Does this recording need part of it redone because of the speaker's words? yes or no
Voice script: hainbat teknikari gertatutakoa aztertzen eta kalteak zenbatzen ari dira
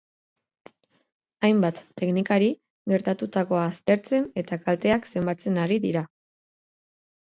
no